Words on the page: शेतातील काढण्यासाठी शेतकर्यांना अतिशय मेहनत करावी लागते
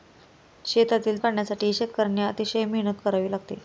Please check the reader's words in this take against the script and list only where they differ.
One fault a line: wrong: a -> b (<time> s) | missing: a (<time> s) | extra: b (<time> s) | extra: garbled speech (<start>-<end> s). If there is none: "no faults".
no faults